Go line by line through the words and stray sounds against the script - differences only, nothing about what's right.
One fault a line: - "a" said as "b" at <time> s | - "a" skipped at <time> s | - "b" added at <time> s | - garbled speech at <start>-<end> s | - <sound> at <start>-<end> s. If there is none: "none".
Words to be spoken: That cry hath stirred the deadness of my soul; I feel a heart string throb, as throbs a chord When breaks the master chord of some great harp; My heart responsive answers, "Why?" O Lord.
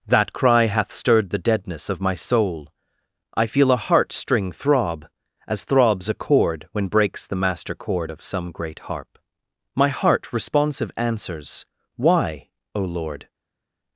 none